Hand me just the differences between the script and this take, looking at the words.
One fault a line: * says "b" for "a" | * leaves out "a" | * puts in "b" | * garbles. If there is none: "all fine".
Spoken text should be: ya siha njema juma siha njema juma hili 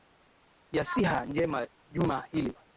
* leaves out "siha njema juma"